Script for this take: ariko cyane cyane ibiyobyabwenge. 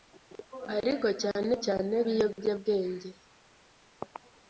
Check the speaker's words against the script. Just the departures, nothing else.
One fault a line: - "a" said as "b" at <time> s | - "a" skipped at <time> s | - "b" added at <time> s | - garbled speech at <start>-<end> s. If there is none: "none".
none